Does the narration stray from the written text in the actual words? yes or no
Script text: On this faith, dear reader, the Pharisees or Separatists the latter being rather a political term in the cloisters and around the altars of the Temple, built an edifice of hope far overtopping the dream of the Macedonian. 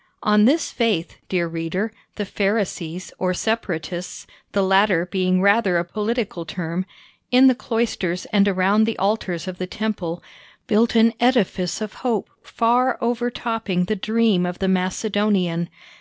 no